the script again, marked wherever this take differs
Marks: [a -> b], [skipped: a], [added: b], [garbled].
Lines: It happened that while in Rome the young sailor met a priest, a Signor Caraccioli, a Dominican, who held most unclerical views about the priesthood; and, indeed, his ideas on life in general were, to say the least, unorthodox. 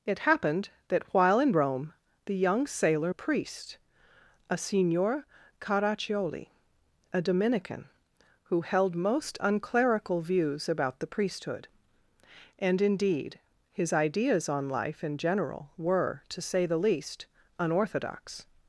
It happened that while in Rome the young sailor [skipped: met] a priest, a Signor Caraccioli, a Dominican, who held most unclerical views about the priesthood; and, indeed, his ideas on life in general were, to say the least, unorthodox.